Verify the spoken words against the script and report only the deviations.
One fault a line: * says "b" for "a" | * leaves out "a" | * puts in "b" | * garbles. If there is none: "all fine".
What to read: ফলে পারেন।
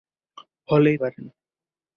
all fine